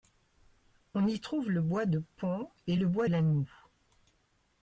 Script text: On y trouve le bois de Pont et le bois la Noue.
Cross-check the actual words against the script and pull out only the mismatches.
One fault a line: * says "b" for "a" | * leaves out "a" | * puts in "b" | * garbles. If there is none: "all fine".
all fine